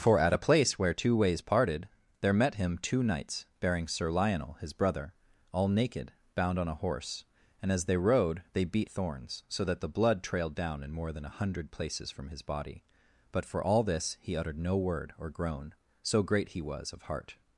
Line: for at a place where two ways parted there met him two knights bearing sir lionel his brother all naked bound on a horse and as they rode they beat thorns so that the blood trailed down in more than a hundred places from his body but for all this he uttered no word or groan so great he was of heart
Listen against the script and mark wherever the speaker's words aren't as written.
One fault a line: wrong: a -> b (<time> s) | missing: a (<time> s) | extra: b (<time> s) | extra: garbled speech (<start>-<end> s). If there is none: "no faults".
no faults